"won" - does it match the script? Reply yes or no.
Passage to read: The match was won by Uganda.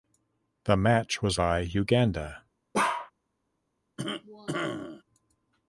no